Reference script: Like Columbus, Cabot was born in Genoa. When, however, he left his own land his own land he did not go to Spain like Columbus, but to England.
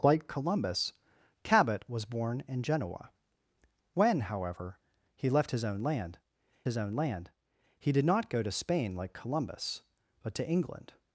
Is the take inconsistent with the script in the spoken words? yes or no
no